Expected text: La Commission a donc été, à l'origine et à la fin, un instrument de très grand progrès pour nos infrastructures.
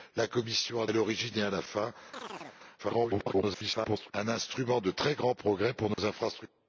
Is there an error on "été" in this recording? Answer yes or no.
yes